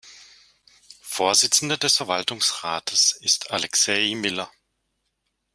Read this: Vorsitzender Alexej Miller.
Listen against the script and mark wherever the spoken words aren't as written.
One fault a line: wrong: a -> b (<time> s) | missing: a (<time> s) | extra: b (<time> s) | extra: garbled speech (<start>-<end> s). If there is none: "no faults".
extra: des Verwaltungsrates ist (1.8 s)